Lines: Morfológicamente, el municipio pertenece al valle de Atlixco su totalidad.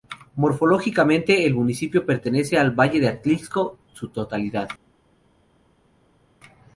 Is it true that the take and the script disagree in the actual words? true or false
false